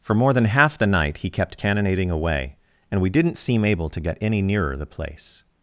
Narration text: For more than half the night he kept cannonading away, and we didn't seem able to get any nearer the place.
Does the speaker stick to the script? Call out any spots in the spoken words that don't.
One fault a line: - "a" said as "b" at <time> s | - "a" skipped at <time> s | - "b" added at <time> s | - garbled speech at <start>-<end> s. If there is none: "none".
none